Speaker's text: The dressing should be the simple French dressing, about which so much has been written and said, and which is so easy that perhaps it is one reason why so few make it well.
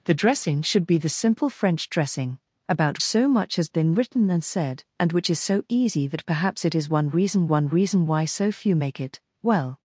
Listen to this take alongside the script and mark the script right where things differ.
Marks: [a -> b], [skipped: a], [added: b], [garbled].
The dressing should be the simple French dressing, about [skipped: which] so much has been written and said, and which is so easy that perhaps it is one reason [added: one reason] why so few make it well.